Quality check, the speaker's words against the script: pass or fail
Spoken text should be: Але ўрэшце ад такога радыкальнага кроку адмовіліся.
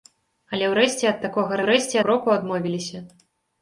fail